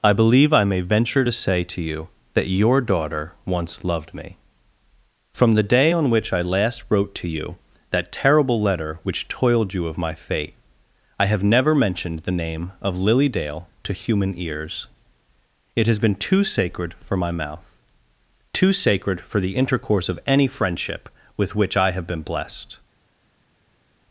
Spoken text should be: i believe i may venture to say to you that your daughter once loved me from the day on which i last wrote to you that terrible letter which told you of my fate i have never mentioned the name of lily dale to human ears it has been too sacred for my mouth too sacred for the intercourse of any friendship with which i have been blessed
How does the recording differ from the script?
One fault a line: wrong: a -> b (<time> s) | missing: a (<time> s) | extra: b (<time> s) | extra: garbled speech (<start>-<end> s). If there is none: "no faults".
wrong: told -> toiled (9.3 s)